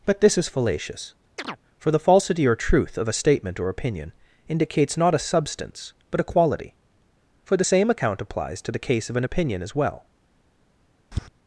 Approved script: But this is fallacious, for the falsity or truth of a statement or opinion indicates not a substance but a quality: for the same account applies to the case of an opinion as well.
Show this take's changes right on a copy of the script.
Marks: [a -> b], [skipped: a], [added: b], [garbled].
But this is fallacious, for the falsity or truth of a statement or opinion indicates not a substance but a quality: for the same account applies to the case of an opinion as well.